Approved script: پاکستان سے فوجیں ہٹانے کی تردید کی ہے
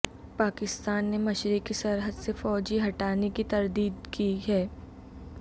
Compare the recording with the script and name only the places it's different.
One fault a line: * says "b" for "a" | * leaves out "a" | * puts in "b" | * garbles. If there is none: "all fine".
* puts in "نے مشرقی سرحد"